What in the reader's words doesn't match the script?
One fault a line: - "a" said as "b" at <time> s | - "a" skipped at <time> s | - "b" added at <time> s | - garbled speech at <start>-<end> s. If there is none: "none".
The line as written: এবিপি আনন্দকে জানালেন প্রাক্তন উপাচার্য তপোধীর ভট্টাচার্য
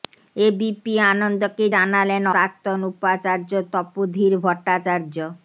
none